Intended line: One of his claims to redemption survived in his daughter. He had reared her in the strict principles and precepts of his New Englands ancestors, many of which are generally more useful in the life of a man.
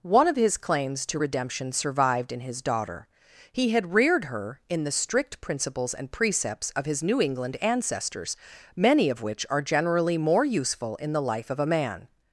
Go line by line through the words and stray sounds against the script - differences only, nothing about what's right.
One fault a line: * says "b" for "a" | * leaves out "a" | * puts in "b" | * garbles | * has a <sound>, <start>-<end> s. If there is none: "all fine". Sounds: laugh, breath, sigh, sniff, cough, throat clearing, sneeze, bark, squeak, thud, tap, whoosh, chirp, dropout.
* says "England" for "Englands"